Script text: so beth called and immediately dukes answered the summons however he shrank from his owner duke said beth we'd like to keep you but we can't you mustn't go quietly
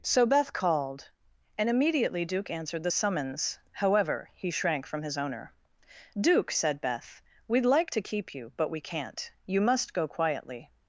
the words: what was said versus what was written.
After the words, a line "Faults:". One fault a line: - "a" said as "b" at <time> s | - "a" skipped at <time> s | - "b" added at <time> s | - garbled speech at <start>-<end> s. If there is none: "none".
so beth called and immediately duke answered the summons however he shrank from his owner duke said beth we'd like to keep you but we can't you must go quietly
Faults:
- "dukes" said as "duke" at 2.2 s
- "mustn't" said as "must" at 9.6 s